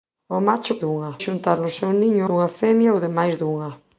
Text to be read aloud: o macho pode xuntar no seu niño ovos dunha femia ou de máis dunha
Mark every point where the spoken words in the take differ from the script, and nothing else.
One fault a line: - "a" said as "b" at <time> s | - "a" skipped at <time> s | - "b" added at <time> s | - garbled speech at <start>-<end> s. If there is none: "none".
- "pode" said as "dunha" at 0.8 s
- "ovos" skipped at 2.2 s